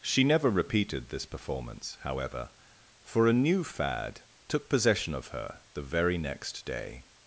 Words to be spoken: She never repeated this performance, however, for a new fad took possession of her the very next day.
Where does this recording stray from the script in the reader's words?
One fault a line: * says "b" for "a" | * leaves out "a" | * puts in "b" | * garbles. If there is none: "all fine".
all fine